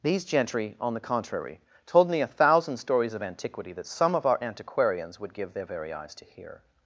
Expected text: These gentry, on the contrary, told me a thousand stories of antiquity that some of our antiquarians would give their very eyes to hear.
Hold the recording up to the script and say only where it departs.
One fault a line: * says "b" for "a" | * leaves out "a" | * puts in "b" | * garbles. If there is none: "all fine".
all fine